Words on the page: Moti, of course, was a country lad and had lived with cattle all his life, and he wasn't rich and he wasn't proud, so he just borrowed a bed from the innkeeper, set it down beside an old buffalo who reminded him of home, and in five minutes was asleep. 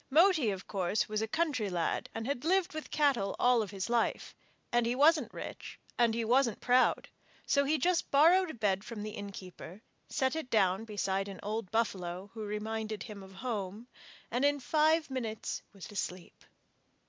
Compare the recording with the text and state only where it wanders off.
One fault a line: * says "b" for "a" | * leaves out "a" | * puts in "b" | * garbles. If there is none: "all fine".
all fine